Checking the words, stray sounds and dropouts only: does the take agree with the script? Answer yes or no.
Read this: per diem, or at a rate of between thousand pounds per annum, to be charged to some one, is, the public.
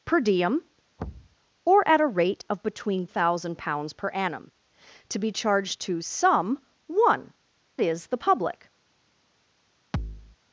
no